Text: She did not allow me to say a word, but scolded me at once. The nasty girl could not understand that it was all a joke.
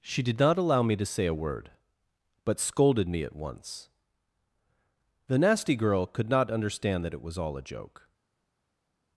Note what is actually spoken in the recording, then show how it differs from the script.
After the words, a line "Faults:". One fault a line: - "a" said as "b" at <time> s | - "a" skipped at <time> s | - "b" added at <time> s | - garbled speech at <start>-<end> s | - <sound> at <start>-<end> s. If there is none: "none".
She did not allow me to say a word, but scolded me at once. The nasty girl could not understand that it was all a joke.
Faults:
none